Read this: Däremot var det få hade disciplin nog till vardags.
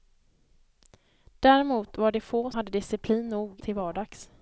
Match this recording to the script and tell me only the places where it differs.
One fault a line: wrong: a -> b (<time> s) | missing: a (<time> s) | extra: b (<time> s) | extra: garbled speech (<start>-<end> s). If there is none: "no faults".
no faults